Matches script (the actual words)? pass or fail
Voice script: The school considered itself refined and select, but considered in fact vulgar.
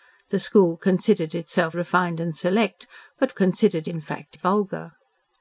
pass